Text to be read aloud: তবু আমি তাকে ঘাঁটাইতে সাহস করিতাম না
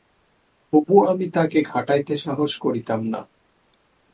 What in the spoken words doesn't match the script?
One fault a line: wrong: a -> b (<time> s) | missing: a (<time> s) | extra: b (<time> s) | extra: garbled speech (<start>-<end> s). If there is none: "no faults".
no faults